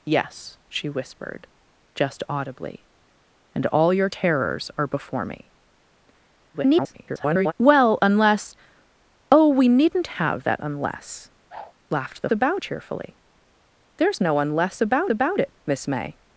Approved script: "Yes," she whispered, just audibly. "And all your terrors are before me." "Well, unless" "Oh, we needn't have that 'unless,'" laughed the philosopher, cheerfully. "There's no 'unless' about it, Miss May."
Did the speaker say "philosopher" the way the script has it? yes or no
no